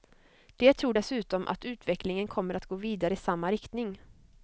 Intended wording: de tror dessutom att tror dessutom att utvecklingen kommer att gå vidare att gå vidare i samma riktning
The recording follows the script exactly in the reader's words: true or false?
false